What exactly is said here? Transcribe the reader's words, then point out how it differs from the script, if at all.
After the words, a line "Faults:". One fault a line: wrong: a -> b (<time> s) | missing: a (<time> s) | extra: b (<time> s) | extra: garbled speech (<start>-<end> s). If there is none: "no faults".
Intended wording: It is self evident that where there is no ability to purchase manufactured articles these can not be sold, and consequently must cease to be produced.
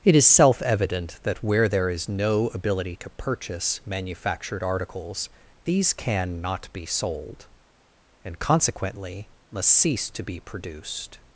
It is self evident that where there is no ability to purchase manufactured articles these can not be sold, and consequently must cease to be produced.
Faults:
no faults